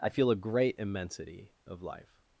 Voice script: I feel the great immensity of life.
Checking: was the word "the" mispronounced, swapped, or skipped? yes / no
yes